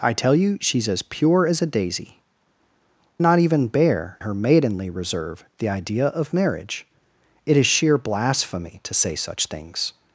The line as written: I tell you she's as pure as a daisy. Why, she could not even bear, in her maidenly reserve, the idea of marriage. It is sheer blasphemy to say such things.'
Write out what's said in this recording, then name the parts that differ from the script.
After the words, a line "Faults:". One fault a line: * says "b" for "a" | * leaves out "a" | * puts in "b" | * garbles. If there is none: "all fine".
I tell you she's as pure as a daisy. Not even bear, her maidenly reserve, the idea of marriage. It is sheer blasphemy to say such things.'
Faults:
* leaves out "Why she could"
* leaves out "in"